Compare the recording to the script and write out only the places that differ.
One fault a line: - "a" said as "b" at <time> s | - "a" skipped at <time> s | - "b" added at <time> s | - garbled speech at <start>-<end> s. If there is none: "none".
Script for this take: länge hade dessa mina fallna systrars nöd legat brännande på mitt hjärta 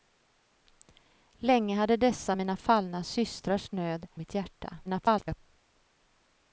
- "legat brännande på" skipped at 4.1 s
- garbled speech at 4.9-5.4 s